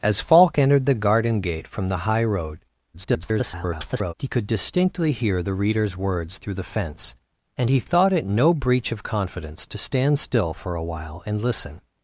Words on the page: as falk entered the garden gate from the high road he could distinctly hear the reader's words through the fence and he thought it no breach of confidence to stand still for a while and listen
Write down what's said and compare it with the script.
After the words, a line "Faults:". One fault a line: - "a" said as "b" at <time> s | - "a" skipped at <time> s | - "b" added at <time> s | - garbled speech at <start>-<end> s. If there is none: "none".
as falk entered the garden gate from the high road [garbled] he could distinctly hear the reader's words through the fence and he thought it no breach of confidence to stand still for a while and listen
Faults:
- garbled speech at 2.9-4.1 s